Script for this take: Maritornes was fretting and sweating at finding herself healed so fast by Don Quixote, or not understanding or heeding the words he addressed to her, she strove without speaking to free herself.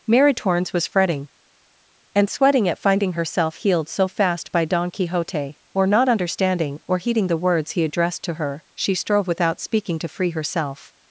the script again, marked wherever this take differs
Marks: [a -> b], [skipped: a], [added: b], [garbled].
Maritornes was fretting and sweating at finding herself healed so fast by Don Quixote, or not understanding or heeding the words he addressed to her, she strove without speaking to free herself.